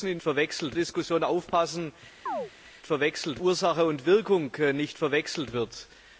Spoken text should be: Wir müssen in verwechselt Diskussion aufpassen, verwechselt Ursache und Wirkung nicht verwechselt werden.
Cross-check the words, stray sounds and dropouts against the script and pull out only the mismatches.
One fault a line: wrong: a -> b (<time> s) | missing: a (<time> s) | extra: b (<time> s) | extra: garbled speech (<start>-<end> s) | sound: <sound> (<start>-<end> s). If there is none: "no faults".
sound: chirp (2.3-2.5 s)